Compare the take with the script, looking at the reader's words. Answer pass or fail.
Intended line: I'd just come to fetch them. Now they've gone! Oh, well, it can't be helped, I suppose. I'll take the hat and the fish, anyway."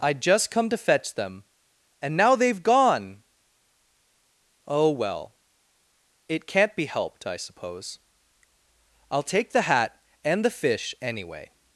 fail